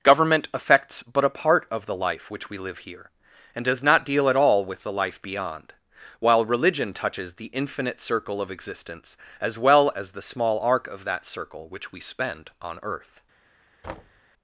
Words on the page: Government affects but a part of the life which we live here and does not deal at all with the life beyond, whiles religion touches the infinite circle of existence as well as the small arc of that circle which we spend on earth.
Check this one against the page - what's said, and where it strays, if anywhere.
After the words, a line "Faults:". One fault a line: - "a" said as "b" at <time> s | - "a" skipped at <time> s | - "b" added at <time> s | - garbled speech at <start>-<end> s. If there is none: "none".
Government affects but a part of the life which we live here and does not deal at all with the life beyond, while religion touches the infinite circle of existence as well as the small arc of that circle which we spend on earth.
Faults:
- "whiles" said as "while" at 6.2 s